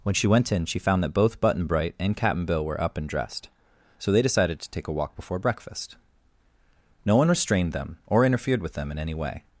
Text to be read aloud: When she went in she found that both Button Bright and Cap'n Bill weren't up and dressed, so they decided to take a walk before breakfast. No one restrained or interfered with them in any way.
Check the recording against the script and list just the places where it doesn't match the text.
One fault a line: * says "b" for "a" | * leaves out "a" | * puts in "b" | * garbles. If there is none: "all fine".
* says "were" for "weren't"
* puts in "them"